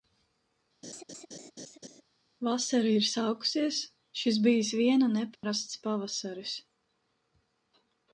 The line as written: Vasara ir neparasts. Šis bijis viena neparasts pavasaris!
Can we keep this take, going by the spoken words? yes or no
no